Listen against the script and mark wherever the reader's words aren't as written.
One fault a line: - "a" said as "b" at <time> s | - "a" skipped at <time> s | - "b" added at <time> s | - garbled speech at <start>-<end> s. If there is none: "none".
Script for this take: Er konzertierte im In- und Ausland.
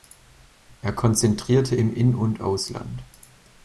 none